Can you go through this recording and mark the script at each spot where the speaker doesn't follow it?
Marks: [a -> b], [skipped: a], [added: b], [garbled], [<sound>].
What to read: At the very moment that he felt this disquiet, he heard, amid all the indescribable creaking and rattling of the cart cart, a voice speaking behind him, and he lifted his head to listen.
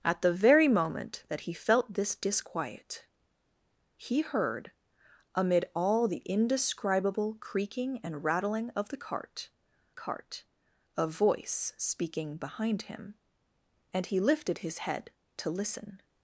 At the very moment that he felt this disquiet, he heard, amid all the indescribable creaking and rattling of the cart cart, a voice speaking behind him, and he lifted his head to listen.